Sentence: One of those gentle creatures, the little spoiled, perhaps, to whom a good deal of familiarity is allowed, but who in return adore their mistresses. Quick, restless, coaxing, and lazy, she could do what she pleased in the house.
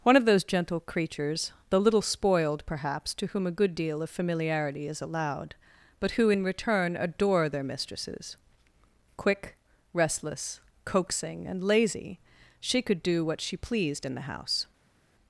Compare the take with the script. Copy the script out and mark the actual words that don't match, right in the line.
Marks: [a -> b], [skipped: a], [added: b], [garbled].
One of those gentle creatures, the little spoiled, perhaps, to whom a good deal of familiarity is allowed, but who in return adore their mistresses. Quick, restless, coaxing, and lazy, she could do what she pleased in the house.